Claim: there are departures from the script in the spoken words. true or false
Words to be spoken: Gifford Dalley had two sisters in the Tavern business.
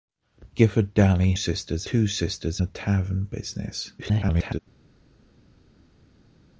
true